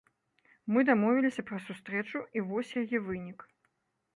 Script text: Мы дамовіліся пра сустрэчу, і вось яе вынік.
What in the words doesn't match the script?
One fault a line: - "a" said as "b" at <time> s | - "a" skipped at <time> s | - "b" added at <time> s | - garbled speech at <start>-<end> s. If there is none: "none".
none